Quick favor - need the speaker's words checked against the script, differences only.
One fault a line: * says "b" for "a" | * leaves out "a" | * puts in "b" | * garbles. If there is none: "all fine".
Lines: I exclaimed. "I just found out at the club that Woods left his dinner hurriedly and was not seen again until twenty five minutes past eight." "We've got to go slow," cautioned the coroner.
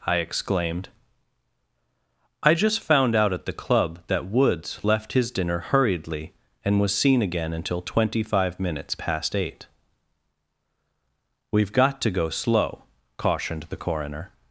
* leaves out "not"